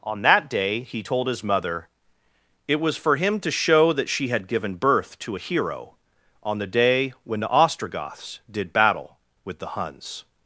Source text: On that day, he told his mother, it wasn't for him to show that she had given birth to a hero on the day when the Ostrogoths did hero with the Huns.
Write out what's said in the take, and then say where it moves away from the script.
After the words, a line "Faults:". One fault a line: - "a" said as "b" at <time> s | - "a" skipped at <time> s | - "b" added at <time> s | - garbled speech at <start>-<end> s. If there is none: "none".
On that day, he told his mother, it was for him to show that she had given birth to a hero on the day when the Ostrogoths did battle with the Huns.
Faults:
- "wasn't" said as "was" at 2.8 s
- "hero" said as "battle" at 8.7 s